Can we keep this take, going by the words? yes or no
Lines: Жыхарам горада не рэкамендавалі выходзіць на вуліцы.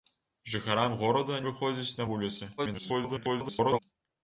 no